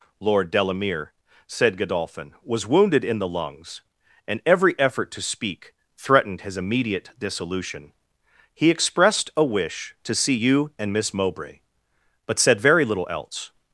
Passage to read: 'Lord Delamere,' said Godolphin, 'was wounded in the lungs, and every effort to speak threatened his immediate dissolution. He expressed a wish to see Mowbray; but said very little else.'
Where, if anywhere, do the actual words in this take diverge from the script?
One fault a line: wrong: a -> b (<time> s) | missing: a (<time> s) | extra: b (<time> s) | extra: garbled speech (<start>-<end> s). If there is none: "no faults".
extra: you and Miss (10.3 s)